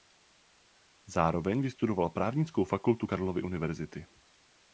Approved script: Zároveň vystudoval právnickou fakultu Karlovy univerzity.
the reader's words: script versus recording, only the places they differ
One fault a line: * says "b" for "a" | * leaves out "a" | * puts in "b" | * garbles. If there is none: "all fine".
all fine